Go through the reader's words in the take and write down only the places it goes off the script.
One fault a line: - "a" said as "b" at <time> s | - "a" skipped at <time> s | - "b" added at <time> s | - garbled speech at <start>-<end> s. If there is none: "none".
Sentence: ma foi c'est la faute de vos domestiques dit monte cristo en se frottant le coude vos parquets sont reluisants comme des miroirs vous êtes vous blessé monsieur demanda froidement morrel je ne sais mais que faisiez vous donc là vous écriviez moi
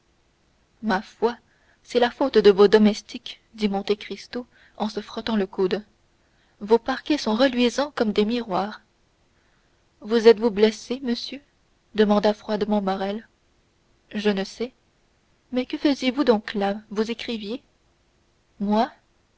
none